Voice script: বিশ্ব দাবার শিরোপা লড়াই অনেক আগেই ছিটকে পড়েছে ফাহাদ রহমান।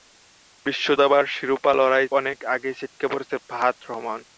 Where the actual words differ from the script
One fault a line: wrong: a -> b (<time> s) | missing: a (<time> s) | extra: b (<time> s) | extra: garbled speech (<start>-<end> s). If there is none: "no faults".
no faults